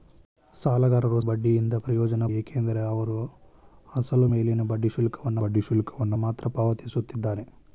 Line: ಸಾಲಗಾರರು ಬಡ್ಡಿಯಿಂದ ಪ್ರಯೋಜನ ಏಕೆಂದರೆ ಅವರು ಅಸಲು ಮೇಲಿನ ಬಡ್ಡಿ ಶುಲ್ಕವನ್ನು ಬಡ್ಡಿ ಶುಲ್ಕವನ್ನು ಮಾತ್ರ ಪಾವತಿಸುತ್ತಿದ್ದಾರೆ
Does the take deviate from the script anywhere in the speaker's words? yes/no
no